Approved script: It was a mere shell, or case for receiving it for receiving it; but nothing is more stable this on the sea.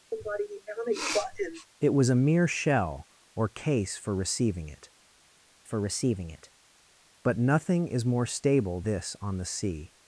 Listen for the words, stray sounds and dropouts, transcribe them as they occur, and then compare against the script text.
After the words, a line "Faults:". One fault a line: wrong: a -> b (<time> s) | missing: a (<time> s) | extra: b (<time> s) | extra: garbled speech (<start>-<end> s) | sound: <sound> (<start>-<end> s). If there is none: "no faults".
It was a mere shell, or case for receiving it for receiving it; but nothing is more stable this on the sea.
Faults:
sound: sniff (0.1-1.7 s)